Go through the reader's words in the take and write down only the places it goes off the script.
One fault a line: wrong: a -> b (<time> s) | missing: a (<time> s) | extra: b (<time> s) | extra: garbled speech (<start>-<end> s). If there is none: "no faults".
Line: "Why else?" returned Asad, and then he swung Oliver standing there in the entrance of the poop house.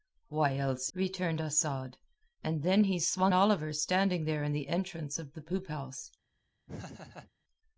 no faults